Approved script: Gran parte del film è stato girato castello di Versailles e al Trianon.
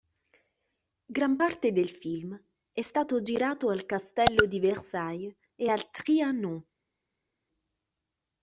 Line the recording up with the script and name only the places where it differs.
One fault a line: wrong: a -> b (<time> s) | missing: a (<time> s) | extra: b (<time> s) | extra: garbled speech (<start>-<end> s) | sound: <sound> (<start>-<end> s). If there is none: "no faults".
extra: al (3.7 s)